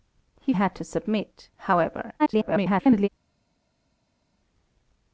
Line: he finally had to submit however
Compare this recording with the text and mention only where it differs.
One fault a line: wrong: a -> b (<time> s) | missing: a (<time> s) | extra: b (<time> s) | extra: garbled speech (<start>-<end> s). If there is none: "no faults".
missing: finally (0.5 s)
extra: garbled speech (2.2-3.1 s)